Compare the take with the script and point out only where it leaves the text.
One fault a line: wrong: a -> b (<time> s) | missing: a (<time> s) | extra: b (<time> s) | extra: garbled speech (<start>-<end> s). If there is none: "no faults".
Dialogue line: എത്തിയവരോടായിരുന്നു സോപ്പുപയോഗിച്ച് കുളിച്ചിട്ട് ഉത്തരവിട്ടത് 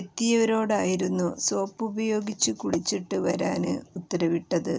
extra: വരാന് (3.2 s)